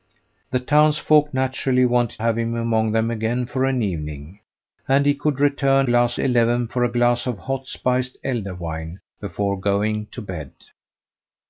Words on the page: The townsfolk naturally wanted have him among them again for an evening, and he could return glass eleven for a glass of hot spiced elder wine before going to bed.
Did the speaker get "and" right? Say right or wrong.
right